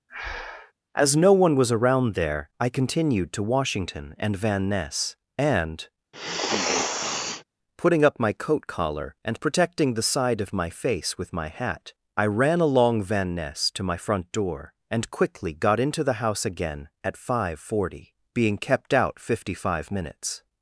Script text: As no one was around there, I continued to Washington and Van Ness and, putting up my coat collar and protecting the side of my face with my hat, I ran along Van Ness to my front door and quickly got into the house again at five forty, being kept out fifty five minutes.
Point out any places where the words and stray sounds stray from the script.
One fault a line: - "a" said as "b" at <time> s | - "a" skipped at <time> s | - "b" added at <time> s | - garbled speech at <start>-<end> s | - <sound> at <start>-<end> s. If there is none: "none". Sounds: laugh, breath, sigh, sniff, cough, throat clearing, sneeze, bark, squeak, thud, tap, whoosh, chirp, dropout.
- breath at 0.1-0.7 s
- sniff at 6.1-7.4 s